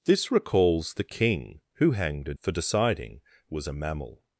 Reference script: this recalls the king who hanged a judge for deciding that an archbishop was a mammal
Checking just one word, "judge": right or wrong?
wrong